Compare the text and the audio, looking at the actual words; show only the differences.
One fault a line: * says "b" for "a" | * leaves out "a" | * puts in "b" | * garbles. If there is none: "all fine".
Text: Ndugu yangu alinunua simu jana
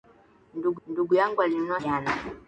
* puts in "ndugu"
* leaves out "simu"